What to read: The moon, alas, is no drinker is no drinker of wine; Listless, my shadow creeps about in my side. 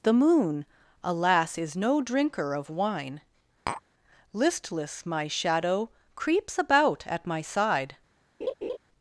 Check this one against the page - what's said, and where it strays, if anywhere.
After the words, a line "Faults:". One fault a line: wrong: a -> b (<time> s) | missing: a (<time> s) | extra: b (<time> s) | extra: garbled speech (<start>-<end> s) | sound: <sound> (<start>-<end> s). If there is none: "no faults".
The moon, alas, is no drinker of wine; Listless, my shadow creeps about at my side.
Faults:
missing: is no drinker (2.5 s)
sound: tap (3.7-3.8 s)
wrong: in -> at (7.1 s)
sound: laugh (8.4-8.8 s)